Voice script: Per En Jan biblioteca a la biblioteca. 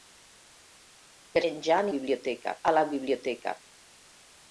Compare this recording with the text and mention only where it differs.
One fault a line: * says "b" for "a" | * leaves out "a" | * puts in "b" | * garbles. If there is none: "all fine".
all fine